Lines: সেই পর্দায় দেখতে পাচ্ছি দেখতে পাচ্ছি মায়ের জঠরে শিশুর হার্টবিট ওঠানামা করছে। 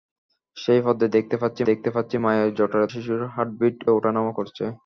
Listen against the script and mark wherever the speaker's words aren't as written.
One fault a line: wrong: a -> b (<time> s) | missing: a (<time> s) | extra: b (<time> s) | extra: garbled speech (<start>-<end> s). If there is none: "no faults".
no faults